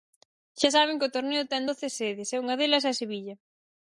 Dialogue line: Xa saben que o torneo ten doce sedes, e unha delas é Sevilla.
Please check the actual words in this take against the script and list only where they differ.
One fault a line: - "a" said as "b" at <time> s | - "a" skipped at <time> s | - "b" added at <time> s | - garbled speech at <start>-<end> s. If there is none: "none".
none